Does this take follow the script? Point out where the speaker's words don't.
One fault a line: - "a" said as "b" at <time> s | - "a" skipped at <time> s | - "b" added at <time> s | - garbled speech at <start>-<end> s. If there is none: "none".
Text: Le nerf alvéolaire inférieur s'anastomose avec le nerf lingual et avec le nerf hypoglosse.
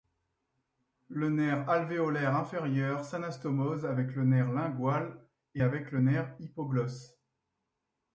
none